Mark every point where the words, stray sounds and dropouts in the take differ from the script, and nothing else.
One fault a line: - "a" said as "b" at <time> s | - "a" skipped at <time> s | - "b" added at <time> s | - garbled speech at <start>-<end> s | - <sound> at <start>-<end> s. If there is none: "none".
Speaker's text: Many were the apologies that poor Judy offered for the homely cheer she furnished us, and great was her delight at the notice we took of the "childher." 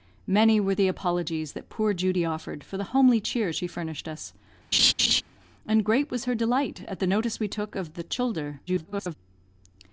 - laugh at 4.7-5.2 s
- garbled speech at 8.7-9.2 s